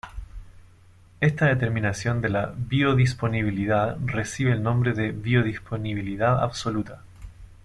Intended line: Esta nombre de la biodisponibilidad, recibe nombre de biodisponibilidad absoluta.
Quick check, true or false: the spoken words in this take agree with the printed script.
false